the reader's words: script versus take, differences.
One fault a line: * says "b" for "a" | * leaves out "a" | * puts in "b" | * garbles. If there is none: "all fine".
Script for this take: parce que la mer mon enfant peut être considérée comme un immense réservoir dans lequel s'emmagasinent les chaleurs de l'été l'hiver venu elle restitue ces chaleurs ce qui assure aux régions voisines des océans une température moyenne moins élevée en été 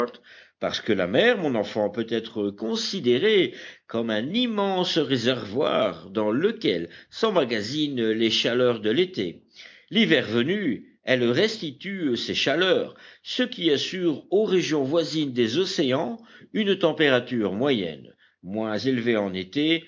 all fine